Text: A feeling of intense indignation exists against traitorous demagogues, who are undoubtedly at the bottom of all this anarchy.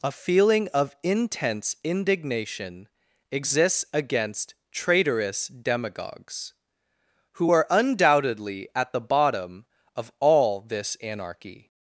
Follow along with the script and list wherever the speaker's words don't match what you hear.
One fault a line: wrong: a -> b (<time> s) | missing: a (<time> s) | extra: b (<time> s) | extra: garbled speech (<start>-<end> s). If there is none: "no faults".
no faults